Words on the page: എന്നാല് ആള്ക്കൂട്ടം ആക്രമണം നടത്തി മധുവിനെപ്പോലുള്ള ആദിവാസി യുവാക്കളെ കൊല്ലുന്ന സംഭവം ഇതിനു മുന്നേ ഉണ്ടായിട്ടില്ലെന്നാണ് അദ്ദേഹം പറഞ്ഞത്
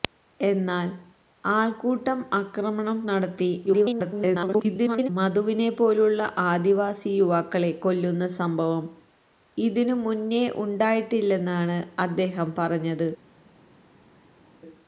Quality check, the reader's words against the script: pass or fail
fail